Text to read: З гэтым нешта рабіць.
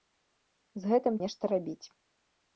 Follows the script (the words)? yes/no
yes